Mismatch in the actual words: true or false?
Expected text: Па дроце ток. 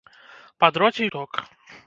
false